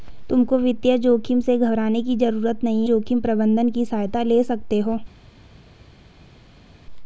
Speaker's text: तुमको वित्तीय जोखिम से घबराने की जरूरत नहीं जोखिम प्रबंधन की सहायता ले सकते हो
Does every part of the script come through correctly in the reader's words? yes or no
yes